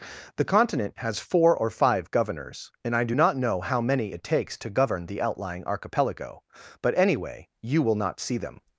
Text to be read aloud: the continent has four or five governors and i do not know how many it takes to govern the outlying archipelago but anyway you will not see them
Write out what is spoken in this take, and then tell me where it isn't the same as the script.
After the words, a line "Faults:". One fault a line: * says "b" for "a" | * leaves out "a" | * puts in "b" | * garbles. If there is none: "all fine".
the continent has four or five governors and i do not know how many it takes to govern the outlying archipelago but anyway you will not see them
Faults:
all fine